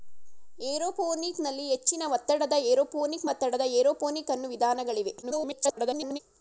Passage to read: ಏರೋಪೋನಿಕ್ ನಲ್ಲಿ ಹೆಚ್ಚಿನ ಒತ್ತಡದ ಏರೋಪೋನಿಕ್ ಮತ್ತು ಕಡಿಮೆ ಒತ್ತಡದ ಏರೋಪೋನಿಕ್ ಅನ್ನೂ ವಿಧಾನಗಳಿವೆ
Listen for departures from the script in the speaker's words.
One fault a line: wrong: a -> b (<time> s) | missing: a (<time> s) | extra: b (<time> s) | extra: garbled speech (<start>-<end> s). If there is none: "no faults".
missing: ಮತ್ತು ಕಡಿಮೆ (3.3 s)
extra: garbled speech (5.2-6.2 s)